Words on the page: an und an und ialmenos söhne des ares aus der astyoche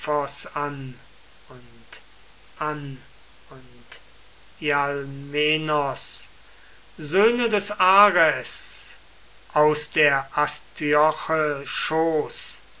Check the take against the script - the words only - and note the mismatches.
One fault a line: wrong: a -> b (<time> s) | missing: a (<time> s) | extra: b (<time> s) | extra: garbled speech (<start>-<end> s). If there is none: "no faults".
no faults